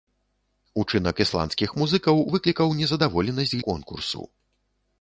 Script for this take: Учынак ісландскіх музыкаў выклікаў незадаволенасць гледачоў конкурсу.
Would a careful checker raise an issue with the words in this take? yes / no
yes